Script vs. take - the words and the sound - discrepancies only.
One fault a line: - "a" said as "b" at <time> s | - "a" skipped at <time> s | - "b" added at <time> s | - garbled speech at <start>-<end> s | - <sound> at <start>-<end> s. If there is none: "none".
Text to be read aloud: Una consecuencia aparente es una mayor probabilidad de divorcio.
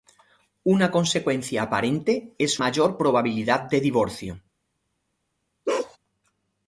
- "una" skipped at 2.6 s
- bark at 5.7-6.0 s